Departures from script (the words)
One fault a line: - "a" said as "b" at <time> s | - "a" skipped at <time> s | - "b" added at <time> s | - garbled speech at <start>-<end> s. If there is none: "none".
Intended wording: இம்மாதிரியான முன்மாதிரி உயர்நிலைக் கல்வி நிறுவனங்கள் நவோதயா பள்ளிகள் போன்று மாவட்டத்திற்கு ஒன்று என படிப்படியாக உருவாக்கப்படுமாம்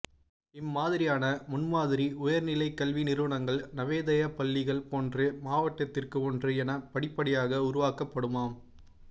none